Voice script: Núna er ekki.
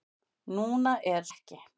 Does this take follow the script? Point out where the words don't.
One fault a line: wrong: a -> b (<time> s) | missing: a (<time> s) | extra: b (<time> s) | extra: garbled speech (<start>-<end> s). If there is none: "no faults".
no faults